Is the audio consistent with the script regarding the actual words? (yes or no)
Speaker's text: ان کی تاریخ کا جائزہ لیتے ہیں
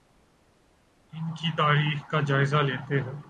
yes